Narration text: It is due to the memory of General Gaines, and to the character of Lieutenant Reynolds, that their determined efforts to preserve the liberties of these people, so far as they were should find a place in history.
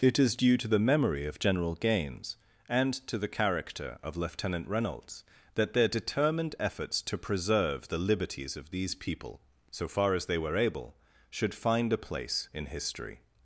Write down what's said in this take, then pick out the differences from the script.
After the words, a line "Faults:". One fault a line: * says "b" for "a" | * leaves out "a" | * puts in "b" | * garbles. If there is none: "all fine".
It is due to the memory of General Gaines, and to the character of Lieutenant Reynolds, that their determined efforts to preserve the liberties of these people, so far as they were able, should find a place in history.
Faults:
* puts in "able"